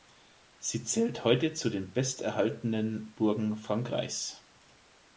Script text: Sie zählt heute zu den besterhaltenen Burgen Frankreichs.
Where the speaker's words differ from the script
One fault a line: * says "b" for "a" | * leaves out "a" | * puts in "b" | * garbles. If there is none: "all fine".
all fine